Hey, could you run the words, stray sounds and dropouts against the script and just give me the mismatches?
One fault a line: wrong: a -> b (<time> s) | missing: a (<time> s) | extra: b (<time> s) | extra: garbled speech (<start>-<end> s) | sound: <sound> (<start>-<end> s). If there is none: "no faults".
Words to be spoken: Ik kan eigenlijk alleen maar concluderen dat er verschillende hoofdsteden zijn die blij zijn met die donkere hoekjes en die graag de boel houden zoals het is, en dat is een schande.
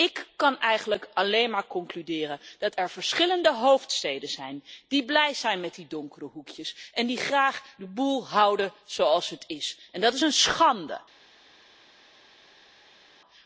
no faults